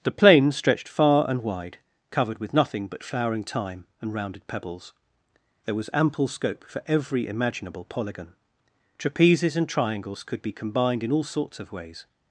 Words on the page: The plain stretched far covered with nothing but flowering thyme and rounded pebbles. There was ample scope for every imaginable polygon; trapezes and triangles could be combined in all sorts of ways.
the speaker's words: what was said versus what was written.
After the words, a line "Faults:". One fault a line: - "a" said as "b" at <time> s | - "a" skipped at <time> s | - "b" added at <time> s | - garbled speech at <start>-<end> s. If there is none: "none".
The plain stretched far and wide, covered with nothing but flowering thyme and rounded pebbles. There was ample scope for every imaginable polygon; trapezes and triangles could be combined in all sorts of ways.
Faults:
- "and wide" added at 1.3 s